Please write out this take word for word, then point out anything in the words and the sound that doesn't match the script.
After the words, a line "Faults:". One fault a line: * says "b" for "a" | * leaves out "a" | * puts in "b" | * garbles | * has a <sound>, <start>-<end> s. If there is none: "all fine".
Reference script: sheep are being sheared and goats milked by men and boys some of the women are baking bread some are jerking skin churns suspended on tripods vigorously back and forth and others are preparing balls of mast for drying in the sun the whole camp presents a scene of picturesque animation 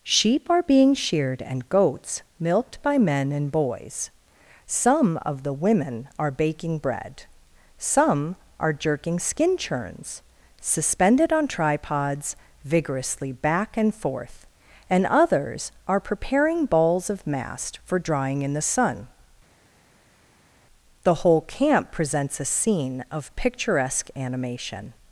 sheep are being sheared and goats milked by men and boys some of the women are baking bread some are jerking skin churns suspended on tripods vigorously back and forth and others are preparing balls of mast for drying in the sun the whole camp presents a scene of picturesque animation
Faults:
all fine